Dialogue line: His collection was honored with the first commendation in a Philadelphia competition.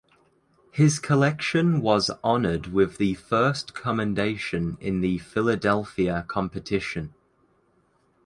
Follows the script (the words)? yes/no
no